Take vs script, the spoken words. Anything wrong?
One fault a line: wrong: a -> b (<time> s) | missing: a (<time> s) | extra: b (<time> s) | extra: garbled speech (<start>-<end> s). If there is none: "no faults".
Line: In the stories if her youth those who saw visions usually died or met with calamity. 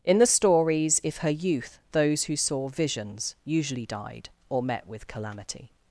no faults